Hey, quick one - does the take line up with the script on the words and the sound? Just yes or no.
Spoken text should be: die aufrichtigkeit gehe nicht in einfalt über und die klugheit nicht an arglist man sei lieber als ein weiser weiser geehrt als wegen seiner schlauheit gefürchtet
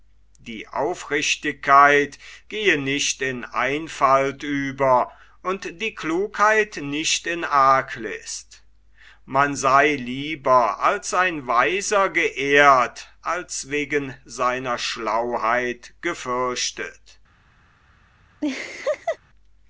no